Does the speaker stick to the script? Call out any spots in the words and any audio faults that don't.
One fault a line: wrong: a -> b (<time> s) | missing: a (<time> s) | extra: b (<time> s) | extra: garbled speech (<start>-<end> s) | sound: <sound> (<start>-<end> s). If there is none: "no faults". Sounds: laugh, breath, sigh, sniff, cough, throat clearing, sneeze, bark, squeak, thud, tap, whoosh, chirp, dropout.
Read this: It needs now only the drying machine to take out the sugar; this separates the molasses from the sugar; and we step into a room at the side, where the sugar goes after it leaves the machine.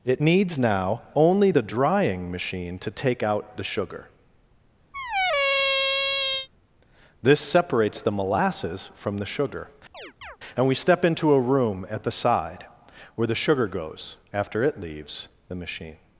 sound: squeak (4.9-6.5 s)
sound: chirp (9.9-10.4 s)